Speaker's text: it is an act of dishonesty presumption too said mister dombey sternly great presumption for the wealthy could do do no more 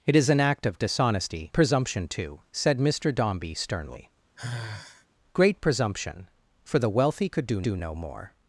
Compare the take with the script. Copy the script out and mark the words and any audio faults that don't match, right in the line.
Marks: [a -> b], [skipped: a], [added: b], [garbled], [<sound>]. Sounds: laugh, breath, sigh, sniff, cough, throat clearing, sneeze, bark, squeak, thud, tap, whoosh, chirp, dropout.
it is an act of dishonesty presumption too said mister dombey sternly [sigh] great presumption for the wealthy could do do no more